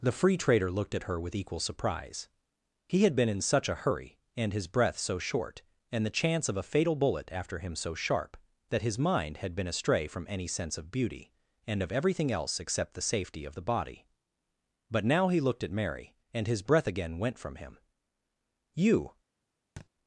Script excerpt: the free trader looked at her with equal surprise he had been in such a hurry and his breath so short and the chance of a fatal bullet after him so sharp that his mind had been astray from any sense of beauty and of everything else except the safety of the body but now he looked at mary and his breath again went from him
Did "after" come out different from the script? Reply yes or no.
no